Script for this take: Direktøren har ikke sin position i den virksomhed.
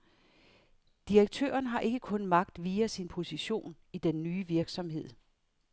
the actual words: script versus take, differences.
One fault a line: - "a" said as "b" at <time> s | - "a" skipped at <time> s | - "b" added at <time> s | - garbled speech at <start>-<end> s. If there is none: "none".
- "kun magt via" added at 2.0 s
- "nye" added at 4.2 s